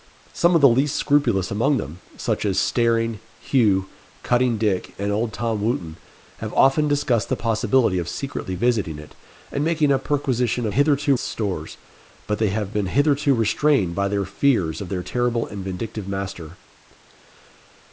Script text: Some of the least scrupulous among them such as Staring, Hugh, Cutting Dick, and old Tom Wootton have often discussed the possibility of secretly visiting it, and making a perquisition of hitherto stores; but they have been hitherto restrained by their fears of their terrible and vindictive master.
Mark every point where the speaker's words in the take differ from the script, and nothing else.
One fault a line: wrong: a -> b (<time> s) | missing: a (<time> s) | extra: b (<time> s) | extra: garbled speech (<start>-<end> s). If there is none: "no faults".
no faults